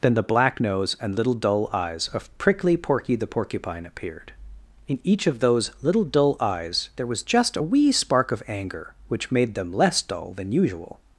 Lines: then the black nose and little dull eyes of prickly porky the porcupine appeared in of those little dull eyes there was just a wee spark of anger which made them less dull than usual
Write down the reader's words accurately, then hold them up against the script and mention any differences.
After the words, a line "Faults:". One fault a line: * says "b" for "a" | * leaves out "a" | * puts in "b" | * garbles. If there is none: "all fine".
then the black nose and little dull eyes of prickly porky the porcupine appeared in each of those little dull eyes there was just a wee spark of anger which made them less dull than usual
Faults:
* puts in "each"